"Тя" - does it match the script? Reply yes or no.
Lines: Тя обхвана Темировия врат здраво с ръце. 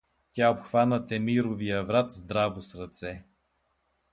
yes